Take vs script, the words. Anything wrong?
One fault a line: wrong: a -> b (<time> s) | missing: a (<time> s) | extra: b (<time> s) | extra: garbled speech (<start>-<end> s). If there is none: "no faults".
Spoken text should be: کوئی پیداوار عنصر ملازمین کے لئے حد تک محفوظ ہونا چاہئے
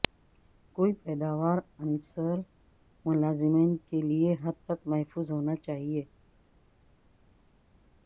no faults